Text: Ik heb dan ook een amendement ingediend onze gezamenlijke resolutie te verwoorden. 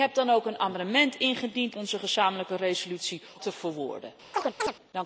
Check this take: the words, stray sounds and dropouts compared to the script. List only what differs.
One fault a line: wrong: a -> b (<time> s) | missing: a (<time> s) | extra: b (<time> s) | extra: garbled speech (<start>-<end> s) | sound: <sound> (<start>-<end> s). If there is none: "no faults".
sound: chirp (4.3-4.7 s)